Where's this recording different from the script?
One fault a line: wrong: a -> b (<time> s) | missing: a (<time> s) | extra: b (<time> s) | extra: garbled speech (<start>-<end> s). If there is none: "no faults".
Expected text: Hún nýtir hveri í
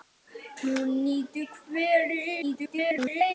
extra: garbled speech (2.4-3.3 s)